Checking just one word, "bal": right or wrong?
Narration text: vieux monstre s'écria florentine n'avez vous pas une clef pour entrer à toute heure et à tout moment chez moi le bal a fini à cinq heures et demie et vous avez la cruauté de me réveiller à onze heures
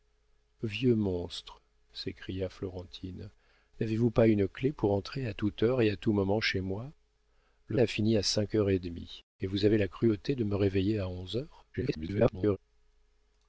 wrong